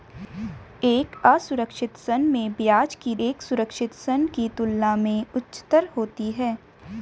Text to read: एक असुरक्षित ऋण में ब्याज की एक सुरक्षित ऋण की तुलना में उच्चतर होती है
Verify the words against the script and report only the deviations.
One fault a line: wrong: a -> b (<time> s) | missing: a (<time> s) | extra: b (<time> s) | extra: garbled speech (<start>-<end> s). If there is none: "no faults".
no faults